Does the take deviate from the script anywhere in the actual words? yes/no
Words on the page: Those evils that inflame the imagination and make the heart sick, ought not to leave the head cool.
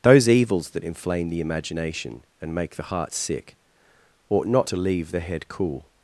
no